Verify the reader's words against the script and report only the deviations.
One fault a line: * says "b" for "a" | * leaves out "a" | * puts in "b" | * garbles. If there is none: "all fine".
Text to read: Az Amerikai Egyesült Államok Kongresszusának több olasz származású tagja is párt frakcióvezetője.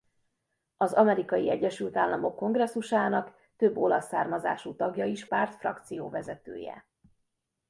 all fine